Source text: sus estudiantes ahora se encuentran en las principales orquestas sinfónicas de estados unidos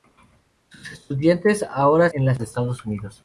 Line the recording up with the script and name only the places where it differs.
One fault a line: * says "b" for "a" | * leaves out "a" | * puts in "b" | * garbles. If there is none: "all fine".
* leaves out "se encuentran"
* leaves out "principales orquestas sinfónicas"